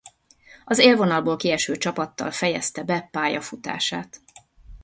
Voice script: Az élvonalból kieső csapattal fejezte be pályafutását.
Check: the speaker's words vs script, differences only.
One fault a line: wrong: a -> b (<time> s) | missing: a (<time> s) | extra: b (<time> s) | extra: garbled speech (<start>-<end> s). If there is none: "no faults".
no faults